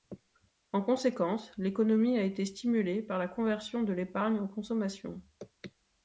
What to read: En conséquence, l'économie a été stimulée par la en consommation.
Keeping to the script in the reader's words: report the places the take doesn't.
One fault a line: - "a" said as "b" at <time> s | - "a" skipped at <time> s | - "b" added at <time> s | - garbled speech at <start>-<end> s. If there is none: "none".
- "conversion de l'épargne" added at 3.3 s